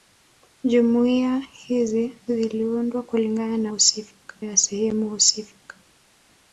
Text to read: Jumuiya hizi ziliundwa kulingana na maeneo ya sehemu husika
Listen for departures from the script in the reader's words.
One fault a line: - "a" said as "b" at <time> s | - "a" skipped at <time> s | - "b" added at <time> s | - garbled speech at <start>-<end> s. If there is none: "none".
- "maeneo" said as "husika" at 3.7 s